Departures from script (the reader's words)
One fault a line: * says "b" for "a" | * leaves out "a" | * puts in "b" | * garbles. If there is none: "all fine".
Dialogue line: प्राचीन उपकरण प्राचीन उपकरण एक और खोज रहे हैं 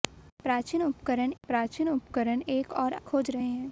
all fine